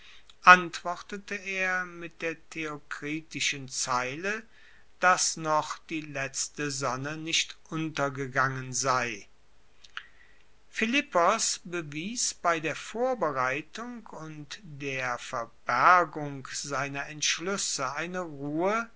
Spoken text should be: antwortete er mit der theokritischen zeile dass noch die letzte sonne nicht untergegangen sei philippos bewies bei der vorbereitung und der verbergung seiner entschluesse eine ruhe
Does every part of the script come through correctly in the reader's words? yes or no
yes